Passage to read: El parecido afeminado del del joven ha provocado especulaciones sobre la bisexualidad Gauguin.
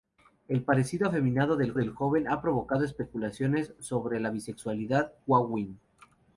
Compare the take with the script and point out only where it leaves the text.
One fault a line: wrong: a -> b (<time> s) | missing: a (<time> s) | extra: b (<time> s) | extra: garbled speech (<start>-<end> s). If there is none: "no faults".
no faults